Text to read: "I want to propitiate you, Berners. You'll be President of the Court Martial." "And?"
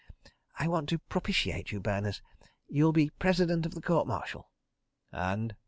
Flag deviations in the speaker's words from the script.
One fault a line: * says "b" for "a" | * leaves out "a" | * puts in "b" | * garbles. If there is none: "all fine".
all fine